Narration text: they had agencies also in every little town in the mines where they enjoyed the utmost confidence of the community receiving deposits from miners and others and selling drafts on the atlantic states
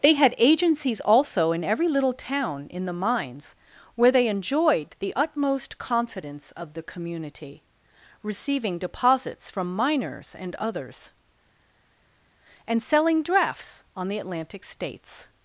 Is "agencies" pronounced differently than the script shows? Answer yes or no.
no